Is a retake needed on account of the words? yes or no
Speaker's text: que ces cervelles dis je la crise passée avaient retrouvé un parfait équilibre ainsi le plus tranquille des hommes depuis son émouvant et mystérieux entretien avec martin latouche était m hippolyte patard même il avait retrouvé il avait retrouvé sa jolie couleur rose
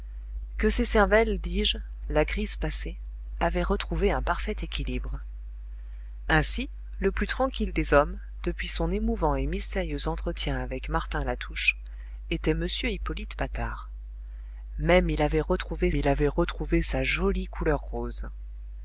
no